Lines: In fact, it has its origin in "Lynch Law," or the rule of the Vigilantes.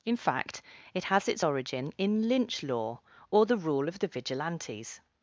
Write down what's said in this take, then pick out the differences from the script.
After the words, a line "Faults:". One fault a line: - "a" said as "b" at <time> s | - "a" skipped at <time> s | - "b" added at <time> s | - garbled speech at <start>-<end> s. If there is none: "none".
In fact, it has its origin in "Lynch Law," or the rule of the Vigilantes.
Faults:
none